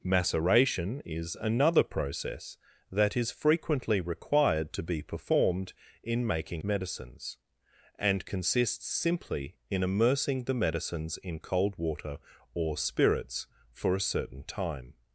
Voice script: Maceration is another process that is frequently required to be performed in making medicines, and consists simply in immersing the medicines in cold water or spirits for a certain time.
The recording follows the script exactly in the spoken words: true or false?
true